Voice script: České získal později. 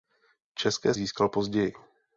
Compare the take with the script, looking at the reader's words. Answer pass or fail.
pass